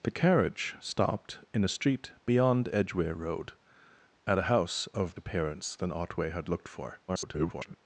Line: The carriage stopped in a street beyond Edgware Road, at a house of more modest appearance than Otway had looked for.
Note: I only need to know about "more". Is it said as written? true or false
false